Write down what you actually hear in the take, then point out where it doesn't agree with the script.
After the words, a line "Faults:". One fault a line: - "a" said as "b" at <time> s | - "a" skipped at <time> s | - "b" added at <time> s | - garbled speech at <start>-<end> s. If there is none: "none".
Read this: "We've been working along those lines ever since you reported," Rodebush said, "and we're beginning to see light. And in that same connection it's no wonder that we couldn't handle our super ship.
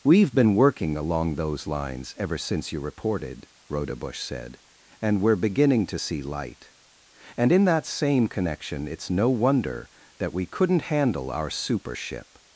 "We've been working along those lines ever since you reported," Rodebush said, "and we're beginning to see light. And in that same connection it's no wonder that we couldn't handle our super ship.
Faults:
none